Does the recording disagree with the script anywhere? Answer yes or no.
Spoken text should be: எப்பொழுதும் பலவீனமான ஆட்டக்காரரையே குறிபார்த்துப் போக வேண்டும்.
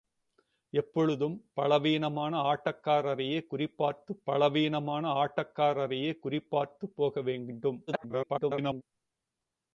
yes